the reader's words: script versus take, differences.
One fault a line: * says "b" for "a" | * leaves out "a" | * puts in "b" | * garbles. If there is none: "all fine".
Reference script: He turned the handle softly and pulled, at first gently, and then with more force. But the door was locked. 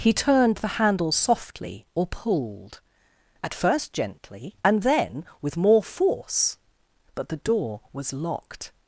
* says "or" for "and"